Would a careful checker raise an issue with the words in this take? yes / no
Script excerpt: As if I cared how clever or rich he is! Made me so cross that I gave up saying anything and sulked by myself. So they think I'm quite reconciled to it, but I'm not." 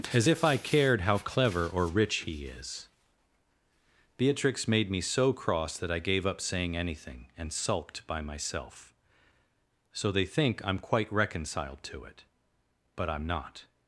yes